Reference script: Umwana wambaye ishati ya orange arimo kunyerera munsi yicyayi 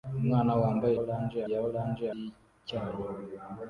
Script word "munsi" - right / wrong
wrong